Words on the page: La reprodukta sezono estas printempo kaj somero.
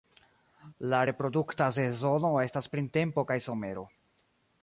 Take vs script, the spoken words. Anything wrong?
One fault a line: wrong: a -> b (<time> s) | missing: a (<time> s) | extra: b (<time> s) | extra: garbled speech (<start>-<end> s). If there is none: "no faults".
no faults